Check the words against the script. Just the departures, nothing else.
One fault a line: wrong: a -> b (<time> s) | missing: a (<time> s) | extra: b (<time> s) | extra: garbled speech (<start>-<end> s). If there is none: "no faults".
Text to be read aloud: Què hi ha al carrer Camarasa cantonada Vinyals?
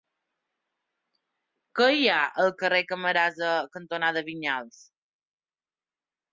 no faults